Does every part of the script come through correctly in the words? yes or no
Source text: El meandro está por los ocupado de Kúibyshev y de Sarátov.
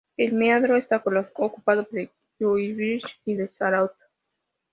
yes